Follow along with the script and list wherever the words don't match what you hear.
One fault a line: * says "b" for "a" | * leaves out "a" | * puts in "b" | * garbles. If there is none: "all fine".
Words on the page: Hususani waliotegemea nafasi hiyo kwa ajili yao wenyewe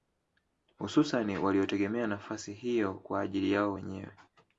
all fine